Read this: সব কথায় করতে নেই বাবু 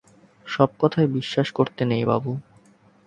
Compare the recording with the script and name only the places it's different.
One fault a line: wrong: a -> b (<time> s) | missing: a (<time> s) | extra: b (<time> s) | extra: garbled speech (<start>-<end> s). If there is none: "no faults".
extra: বিশ্বাস (1.1 s)